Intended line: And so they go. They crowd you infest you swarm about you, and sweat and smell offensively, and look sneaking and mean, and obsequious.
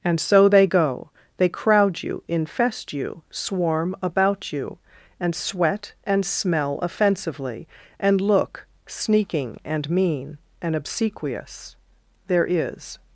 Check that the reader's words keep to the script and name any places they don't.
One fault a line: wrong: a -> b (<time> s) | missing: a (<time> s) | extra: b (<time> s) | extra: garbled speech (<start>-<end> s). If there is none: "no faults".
extra: There is (12.3 s)